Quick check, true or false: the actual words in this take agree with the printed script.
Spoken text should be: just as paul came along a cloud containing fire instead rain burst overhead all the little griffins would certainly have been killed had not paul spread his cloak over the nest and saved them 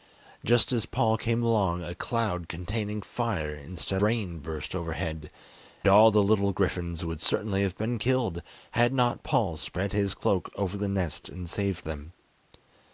true